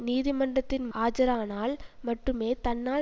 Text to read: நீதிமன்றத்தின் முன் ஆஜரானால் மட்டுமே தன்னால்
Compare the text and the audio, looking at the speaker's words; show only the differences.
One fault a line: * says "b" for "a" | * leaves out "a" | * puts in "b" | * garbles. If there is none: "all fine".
* leaves out "முன்"